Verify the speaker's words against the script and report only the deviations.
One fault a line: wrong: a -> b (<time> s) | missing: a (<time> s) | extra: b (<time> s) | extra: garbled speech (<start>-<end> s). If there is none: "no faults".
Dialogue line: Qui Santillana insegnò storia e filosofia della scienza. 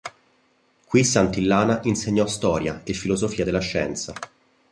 no faults